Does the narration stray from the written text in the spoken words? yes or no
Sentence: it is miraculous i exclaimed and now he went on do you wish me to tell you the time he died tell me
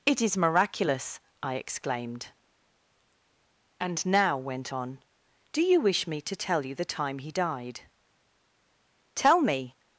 yes